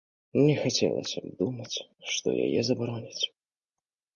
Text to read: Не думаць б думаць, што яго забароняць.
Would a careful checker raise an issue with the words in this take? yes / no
yes